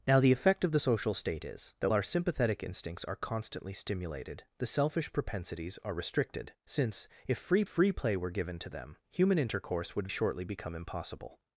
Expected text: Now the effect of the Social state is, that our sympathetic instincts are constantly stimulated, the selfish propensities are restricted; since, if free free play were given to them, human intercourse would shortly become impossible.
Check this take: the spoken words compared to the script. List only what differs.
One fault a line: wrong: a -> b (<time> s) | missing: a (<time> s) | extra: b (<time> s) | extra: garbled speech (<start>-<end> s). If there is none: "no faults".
no faults